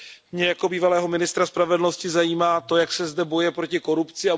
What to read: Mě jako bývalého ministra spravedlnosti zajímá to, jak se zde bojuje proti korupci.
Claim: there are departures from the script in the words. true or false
false